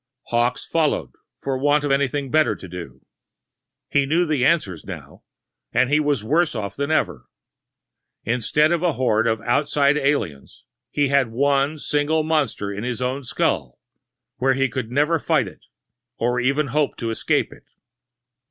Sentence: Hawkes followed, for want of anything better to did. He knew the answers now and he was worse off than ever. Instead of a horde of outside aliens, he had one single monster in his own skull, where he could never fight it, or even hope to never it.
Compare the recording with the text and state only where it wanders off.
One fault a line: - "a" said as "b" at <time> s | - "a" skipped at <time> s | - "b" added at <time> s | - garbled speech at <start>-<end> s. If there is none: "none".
- "did" said as "do" at 2.7 s
- "never" said as "escape" at 17.1 s